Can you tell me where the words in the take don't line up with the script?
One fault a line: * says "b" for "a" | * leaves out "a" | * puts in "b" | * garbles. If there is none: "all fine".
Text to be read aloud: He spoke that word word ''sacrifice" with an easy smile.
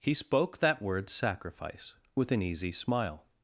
* leaves out "word"